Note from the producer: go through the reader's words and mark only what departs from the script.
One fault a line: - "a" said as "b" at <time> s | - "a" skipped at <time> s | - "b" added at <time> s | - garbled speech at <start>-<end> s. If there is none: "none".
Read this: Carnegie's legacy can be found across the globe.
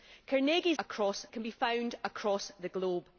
- "legacy" said as "across" at 0.8 s